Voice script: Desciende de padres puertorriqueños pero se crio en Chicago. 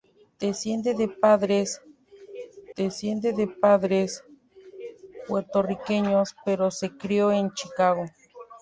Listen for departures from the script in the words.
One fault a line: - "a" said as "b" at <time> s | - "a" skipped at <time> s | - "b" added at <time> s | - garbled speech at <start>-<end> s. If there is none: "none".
- "desciende de padres" added at 2.8 s